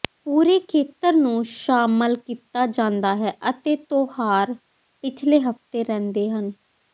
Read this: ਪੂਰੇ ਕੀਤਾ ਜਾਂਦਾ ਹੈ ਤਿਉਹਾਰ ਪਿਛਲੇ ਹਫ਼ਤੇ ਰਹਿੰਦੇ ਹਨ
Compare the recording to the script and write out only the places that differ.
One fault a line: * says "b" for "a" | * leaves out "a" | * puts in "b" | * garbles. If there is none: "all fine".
* puts in "ਖੇਤਰ ਨੂੰ ਸ਼ਾਮਲ"
* puts in "ਅਤੇ"